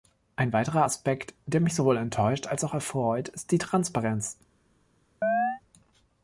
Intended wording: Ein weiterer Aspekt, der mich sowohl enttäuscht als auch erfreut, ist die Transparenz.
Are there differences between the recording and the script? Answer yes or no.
no